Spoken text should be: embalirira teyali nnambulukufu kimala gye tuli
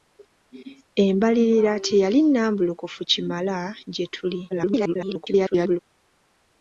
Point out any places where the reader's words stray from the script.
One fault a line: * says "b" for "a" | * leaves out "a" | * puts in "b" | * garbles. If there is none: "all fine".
* garbles